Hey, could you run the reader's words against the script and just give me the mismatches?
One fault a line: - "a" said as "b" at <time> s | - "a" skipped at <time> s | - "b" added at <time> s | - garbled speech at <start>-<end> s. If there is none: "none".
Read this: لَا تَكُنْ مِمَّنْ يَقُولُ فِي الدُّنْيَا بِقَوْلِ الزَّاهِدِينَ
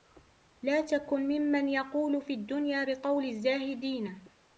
none